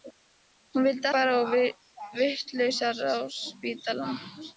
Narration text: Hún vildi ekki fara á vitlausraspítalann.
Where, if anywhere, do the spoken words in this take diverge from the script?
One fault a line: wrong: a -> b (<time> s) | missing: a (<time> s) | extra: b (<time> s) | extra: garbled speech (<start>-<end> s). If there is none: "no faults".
missing: ekki (1.1 s)